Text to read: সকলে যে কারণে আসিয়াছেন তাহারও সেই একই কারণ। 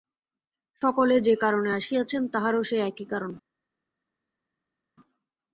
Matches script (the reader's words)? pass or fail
pass